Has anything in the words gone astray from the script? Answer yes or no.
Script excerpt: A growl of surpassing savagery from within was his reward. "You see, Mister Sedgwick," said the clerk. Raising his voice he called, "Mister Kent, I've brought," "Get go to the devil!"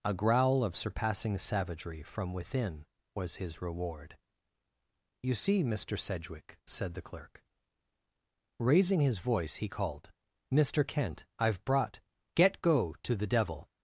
no